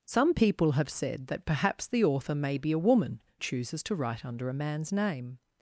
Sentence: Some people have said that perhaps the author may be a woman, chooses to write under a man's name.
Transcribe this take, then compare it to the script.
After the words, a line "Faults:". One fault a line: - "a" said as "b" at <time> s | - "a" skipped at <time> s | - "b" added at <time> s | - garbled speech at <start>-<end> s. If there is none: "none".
Some people have said that perhaps the author may be a woman, chooses to write under a man's name.
Faults:
none